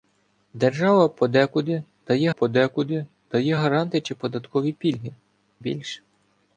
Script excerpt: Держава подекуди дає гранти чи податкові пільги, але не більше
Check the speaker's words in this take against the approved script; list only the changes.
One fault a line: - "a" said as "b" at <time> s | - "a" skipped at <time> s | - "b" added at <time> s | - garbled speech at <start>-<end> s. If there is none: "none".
- "подекуди дає" added at 2.3 s
- "але не" skipped at 5.1 s